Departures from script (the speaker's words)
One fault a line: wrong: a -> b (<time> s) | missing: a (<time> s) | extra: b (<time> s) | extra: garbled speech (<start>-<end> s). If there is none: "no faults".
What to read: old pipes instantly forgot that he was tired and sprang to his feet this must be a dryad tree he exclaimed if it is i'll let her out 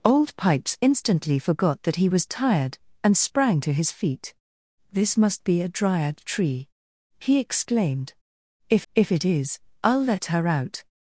extra: if (8.9 s)